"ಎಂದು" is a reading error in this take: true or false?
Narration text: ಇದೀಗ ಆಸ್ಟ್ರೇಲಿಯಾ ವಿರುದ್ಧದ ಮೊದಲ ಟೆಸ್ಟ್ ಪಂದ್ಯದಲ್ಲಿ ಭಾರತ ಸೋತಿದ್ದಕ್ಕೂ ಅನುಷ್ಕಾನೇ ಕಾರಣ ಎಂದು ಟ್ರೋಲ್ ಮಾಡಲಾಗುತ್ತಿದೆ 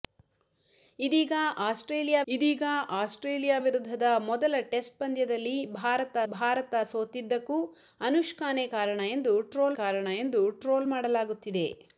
false